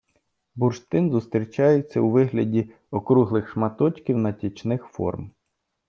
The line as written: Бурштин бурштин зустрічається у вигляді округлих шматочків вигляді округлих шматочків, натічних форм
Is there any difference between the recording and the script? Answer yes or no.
yes